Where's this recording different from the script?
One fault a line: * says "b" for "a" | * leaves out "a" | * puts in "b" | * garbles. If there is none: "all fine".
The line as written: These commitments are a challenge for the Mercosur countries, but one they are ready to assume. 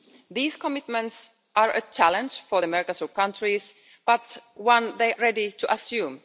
* leaves out "are"